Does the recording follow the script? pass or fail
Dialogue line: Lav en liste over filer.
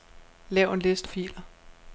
fail